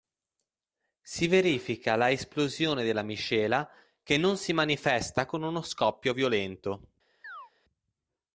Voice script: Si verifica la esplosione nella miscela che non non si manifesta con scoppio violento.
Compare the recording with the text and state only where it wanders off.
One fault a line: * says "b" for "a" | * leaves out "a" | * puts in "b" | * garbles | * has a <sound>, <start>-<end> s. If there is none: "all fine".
* says "della" for "nella"
* leaves out "non"
* puts in "uno"
* has a chirp, 7.2-7.5 s